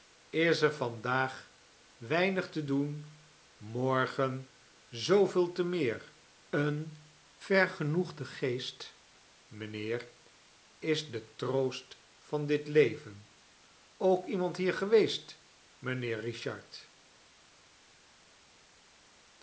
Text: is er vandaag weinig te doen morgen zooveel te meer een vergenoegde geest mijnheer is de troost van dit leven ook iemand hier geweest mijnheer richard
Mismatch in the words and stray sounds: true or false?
false